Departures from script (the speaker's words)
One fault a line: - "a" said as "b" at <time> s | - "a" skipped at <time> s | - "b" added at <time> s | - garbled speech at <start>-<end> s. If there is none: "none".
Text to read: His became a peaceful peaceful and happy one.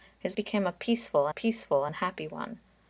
none